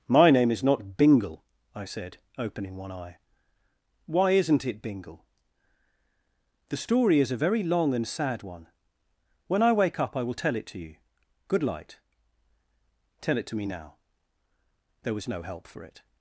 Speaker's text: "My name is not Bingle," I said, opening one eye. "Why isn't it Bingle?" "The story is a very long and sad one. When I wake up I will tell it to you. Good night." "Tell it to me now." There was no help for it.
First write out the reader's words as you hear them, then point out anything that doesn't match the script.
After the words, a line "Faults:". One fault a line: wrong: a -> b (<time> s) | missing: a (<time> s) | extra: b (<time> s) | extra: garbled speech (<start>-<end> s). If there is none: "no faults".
"My name is not Bingle," I said, opening one eye. "Why isn't it Bingle?" "The story is a very long and sad one. When I wake up I will tell it to you. Good light." "Tell it to me now." There was no help for it.
Faults:
wrong: night -> light (11.6 s)